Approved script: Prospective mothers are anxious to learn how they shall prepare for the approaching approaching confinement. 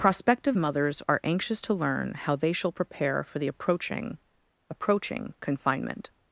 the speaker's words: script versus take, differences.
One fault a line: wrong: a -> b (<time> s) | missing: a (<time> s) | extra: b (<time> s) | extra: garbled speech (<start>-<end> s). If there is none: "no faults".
no faults